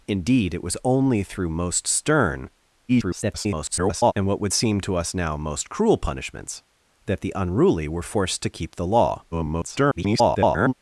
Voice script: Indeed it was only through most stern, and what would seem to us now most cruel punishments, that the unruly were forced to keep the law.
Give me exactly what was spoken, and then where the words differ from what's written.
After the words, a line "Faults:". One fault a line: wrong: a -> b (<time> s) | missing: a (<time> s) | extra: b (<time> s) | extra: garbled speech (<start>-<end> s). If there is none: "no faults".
Indeed it was only through most stern, [garbled] and what would seem to us now most cruel punishments, that the unruly were forced to keep the law. [garbled]
Faults:
extra: garbled speech (2.9-4.1 s)
extra: garbled speech (9.3-10.7 s)